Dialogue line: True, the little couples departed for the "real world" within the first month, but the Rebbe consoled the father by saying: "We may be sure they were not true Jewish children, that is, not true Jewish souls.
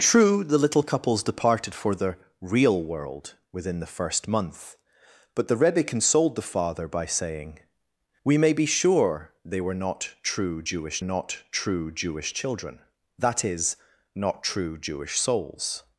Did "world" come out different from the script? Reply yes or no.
no